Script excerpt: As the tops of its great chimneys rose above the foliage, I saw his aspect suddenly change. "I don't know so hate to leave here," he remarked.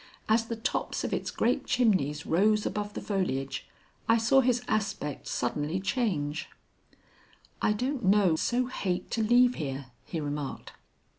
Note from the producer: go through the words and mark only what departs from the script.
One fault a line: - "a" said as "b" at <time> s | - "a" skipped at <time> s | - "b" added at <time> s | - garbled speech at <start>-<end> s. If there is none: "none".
none